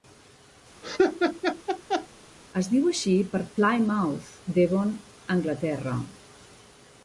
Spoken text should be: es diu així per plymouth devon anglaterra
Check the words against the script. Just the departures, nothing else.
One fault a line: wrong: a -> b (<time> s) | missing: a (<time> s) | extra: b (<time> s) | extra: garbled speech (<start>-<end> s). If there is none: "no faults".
no faults